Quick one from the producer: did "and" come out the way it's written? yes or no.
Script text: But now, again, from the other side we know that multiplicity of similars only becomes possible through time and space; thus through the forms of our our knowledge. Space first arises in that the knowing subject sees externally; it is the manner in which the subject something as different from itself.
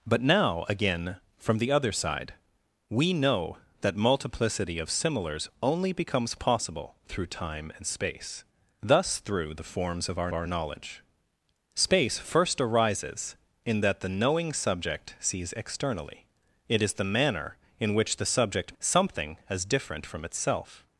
yes